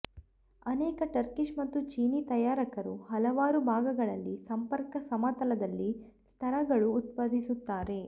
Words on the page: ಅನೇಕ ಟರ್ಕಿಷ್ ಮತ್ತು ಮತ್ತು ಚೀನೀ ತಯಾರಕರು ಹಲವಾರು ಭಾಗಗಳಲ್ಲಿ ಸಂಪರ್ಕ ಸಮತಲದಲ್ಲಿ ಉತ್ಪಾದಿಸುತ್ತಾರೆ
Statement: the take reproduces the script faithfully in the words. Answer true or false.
false